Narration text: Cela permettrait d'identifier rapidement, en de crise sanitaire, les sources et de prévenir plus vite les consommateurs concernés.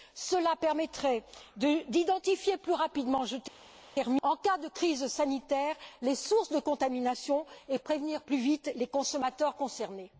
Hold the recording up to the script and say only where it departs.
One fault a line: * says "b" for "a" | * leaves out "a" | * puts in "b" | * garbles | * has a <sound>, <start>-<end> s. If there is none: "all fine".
* puts in "plus"
* puts in "cas"
* puts in "de contamination"